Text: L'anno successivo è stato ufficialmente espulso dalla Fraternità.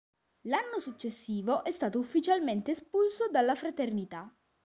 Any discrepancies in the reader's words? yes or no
no